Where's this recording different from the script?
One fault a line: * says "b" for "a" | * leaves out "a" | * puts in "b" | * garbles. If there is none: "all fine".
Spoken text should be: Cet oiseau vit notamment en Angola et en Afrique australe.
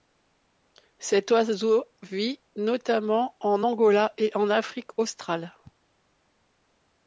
all fine